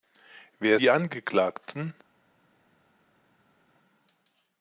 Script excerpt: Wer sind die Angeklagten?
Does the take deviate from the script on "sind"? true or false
true